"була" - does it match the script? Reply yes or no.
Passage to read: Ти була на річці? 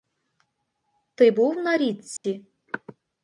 no